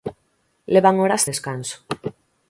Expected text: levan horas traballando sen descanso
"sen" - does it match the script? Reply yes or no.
no